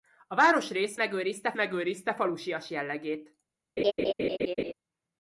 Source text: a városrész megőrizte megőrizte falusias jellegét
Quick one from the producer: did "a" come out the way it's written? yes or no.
yes